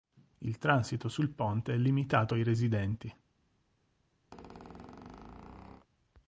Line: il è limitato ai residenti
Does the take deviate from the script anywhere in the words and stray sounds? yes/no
yes